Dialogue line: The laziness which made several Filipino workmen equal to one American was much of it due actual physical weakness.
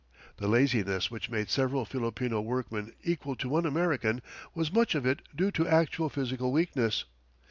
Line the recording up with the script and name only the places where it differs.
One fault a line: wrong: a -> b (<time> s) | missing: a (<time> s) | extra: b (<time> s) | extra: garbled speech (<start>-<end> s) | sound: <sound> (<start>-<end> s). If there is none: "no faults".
extra: to (5.5 s)